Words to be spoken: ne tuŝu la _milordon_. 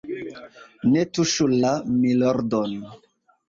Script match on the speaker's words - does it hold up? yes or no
yes